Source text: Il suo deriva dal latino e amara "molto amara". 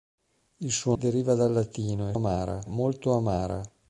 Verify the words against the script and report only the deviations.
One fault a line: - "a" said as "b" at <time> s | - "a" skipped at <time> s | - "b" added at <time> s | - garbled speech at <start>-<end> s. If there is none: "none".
none